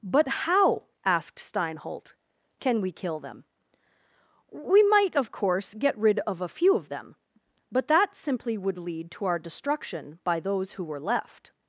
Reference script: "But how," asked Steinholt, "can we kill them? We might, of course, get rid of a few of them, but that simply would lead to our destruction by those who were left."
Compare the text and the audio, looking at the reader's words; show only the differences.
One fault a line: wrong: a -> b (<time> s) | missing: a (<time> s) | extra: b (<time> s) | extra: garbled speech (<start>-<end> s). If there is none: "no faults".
no faults